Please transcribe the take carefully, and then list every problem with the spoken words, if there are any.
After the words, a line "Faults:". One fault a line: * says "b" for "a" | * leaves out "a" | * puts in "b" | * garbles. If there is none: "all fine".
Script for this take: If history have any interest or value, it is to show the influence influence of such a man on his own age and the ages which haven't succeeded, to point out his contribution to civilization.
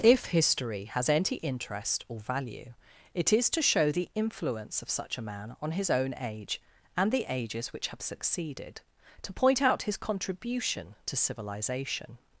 If history has any interest or value, it is to show the influence of such a man on his own age and the ages which have succeeded, to point out his contribution to civilization.
Faults:
* says "has" for "have"
* leaves out "influence"
* says "have" for "haven't"